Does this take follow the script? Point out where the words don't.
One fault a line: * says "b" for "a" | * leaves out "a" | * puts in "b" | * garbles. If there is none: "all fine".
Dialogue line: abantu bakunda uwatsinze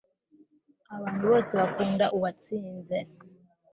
* puts in "bose"